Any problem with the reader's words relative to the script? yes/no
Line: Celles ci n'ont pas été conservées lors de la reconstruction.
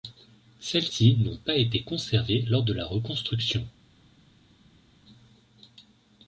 no